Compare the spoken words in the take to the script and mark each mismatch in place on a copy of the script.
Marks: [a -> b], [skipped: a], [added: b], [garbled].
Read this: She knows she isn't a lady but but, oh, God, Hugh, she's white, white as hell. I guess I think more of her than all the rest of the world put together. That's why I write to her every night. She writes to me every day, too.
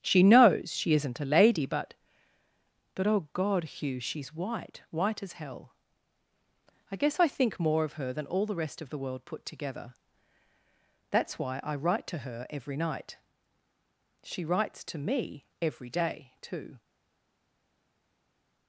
She knows she isn't a lady but but, oh, God, Hugh, she's white, white as hell. I guess I think more of her than all the rest of the world put together. That's why I write to her every night. She writes to me every day, too.